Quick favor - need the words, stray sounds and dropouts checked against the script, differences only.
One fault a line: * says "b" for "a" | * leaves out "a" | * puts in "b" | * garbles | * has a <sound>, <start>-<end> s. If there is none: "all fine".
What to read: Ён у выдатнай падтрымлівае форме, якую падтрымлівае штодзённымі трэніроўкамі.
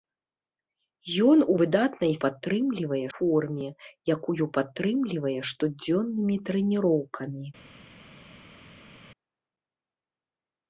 all fine